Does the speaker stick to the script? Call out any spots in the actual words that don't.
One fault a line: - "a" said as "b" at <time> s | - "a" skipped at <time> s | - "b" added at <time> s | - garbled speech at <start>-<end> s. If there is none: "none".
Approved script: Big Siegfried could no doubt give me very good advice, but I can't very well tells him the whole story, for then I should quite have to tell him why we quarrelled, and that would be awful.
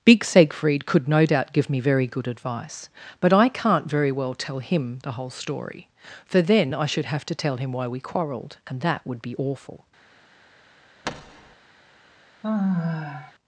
- "tells" said as "tell" at 4.3 s
- "quite" skipped at 7.1 s